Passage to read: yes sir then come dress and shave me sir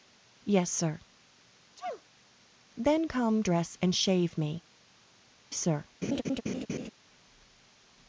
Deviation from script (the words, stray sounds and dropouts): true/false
true